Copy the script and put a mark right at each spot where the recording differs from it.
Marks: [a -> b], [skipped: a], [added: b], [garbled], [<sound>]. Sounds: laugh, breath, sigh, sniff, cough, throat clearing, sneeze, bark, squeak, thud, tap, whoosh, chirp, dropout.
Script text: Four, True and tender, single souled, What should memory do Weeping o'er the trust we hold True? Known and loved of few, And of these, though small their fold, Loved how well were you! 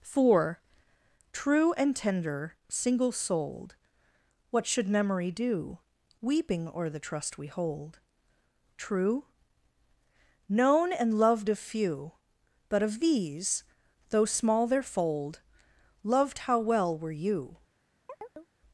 Four, True and tender, single souled, What should memory do Weeping o'er the trust we hold True? Known and loved of few, [And -> But] of these, though small their fold, Loved how well were you! [chirp]